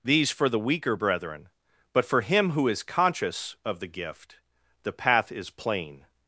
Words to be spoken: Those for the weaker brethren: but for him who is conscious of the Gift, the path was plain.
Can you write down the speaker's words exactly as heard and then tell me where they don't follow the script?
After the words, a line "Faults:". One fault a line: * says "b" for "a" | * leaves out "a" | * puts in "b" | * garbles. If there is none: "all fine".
These for the weaker brethren: but for him who is conscious of the Gift, the path is plain.
Faults:
* says "These" for "Those"
* says "is" for "was"